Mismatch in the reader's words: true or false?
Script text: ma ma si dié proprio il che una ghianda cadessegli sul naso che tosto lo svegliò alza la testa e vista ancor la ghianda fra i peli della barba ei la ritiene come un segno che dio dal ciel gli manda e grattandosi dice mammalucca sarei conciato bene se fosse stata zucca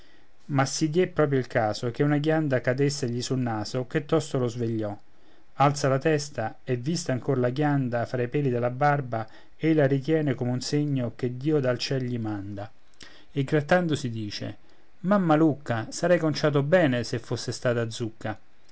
true